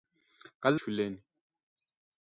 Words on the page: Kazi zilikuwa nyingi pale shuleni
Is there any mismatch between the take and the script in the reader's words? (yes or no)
yes